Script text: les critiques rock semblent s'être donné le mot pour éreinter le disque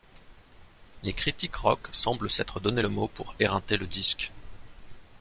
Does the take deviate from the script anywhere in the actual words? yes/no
no